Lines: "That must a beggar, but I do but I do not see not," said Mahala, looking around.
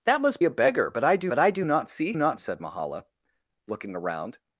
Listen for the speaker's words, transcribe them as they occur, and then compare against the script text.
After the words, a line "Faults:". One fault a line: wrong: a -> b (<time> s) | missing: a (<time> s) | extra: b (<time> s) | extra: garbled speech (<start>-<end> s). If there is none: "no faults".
"That must a beggar, but I do but I do not see not," said Mahala, looking around.
Faults:
no faults